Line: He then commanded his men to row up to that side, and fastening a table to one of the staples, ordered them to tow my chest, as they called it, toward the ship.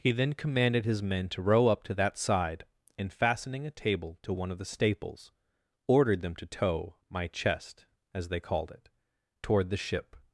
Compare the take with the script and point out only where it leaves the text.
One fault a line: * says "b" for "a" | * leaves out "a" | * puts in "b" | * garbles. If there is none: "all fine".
all fine